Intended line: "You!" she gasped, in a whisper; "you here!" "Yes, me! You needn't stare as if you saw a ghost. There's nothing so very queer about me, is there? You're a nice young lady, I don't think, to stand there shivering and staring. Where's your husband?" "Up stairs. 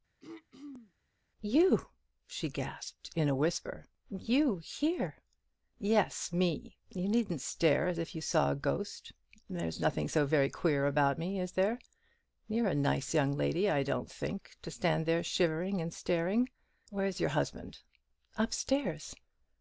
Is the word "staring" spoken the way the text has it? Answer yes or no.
yes